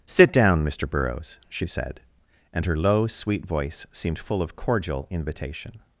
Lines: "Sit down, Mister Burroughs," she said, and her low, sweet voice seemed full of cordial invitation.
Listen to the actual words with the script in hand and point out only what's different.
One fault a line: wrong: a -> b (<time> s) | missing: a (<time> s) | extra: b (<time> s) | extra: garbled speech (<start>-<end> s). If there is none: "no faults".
no faults